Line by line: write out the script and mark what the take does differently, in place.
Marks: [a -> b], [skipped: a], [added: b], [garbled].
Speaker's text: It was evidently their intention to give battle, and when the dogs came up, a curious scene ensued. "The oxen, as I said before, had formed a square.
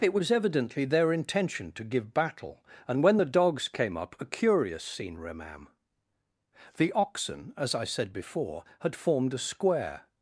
It was evidently their intention to give battle, and when the dogs came up, a curious scene [ensued. -> remam] "The oxen, as I said before, had formed a square.